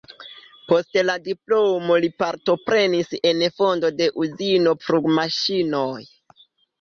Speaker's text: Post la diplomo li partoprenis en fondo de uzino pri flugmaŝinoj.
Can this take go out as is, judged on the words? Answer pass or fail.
fail